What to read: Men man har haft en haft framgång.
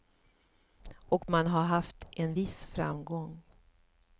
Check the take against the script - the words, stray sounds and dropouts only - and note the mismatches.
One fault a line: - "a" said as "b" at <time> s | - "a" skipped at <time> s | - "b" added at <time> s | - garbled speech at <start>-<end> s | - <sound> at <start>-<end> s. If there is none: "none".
- "Men" said as "Och" at 0.9 s
- "haft" said as "viss" at 2.3 s